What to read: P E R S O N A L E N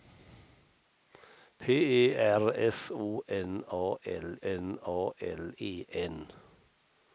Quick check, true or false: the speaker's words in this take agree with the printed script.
false